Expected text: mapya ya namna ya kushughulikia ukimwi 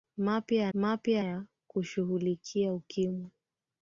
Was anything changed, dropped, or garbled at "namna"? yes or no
yes